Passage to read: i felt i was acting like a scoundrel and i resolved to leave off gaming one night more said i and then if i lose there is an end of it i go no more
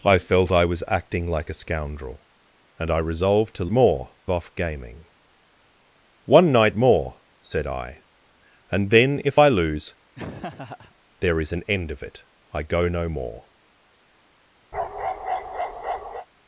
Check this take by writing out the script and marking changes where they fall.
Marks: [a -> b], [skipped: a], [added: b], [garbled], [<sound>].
i felt i was acting like a scoundrel and i resolved to [leave -> more] off gaming one night more said i and then if i lose [laugh] there is an end of it i go no more [bark]